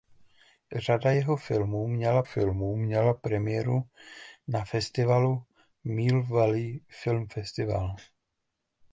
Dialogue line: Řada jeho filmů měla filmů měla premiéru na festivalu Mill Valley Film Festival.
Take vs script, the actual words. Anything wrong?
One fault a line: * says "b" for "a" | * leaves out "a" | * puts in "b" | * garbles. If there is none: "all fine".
all fine